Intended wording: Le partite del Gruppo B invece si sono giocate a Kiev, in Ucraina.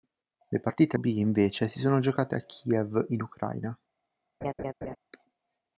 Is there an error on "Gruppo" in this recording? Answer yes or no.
yes